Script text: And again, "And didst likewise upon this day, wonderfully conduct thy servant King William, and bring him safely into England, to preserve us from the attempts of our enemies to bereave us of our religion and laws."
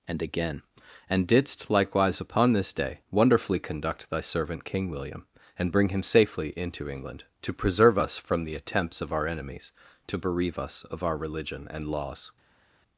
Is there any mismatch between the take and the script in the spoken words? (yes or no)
no